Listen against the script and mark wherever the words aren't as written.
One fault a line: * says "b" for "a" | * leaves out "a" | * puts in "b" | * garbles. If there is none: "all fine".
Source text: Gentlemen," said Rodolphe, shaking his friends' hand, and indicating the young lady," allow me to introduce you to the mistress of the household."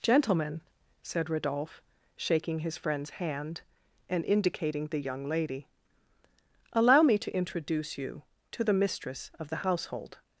all fine